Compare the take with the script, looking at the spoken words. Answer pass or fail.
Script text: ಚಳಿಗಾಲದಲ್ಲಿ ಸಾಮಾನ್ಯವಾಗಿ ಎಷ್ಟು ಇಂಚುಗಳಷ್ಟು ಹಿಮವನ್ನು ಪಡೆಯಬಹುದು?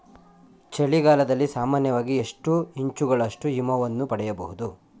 pass